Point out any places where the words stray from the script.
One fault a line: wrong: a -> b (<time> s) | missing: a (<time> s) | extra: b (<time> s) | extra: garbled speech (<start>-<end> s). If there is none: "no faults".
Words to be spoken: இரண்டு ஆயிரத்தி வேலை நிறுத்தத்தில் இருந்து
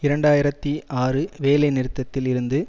extra: ஆறு (1.0 s)